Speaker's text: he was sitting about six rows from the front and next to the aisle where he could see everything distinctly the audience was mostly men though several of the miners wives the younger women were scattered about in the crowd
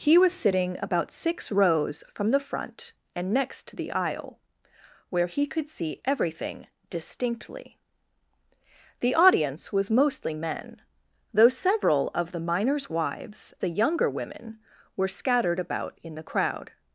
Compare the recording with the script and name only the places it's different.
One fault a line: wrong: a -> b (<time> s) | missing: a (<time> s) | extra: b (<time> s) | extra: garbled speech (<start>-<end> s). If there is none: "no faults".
no faults